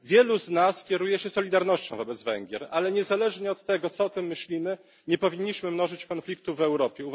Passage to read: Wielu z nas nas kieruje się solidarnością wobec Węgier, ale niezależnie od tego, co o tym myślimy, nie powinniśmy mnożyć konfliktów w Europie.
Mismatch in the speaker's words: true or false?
true